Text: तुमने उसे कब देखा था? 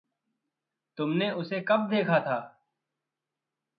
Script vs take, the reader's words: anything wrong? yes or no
no